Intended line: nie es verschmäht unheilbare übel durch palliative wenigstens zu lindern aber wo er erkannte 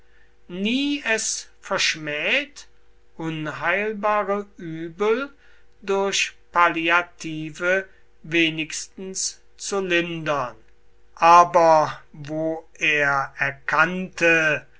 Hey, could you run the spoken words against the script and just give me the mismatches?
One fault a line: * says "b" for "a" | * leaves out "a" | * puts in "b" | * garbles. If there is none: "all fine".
all fine